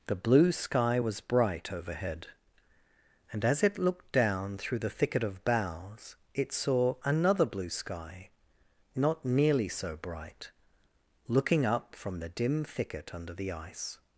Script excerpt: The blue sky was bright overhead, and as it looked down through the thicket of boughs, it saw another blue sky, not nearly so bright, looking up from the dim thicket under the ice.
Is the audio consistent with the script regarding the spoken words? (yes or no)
yes